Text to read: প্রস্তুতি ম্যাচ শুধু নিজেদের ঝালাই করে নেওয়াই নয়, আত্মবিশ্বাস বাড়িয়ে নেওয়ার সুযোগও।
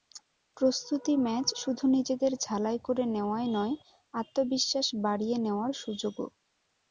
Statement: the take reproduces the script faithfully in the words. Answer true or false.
true